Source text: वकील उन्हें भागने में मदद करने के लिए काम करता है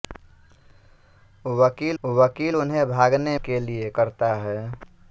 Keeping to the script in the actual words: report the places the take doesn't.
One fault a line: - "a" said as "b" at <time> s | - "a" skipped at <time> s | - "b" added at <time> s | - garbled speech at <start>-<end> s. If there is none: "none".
- "वकील" added at 2.0 s
- "में मदद करने" skipped at 3.4 s
- "काम" skipped at 3.9 s